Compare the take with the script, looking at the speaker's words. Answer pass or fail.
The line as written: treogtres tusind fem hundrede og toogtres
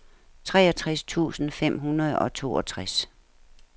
pass